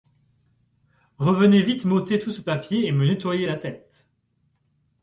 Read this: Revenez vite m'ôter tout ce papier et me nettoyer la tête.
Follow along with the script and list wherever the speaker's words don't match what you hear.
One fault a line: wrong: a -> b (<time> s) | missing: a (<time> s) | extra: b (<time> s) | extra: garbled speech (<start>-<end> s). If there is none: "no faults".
no faults